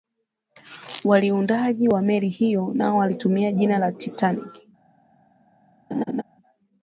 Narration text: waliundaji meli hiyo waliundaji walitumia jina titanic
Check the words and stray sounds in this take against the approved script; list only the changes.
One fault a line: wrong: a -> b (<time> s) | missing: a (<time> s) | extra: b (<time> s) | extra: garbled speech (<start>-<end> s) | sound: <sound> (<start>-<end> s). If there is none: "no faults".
extra: wa (1.9 s)
wrong: waliundaji -> nao (2.7 s)
extra: la (3.8 s)
sound: laugh (5.9-6.2 s)